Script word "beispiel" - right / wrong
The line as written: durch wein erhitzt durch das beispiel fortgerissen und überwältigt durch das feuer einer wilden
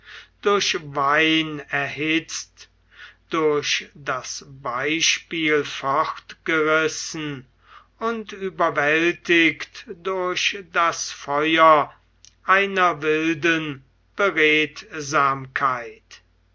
right